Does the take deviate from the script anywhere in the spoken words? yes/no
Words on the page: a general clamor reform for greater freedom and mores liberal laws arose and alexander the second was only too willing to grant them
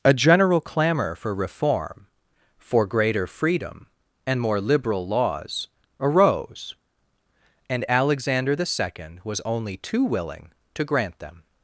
yes